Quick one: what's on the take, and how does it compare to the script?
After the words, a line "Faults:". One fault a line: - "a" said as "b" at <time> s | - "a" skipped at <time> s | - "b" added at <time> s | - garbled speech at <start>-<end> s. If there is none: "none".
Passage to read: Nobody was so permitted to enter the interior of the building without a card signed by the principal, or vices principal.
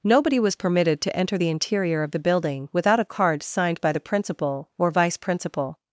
Nobody was permitted to enter the interior of the building without a card signed by the principal, or vice principal.
Faults:
- "so" skipped at 0.6 s
- "vices" said as "vice" at 4.9 s